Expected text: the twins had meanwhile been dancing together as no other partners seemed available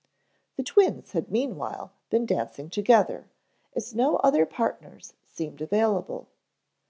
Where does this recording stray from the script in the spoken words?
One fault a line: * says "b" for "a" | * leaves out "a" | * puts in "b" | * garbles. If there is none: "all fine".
all fine